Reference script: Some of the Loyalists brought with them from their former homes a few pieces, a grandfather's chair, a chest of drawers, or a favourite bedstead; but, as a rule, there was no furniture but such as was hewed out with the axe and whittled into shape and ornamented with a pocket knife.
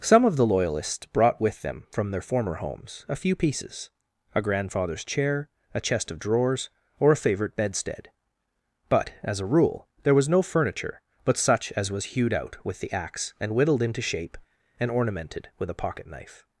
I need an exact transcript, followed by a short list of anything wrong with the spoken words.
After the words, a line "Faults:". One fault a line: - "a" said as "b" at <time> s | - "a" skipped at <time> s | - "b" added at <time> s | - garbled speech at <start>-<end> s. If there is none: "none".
Some of the Loyalists brought with them from their former homes a few pieces, a grandfather's chair, a chest of drawers, or a favourite bedstead; but, as a rule, there was no furniture but such as was hewed out with the axe and whittled into shape and ornamented with a pocket knife.
Faults:
none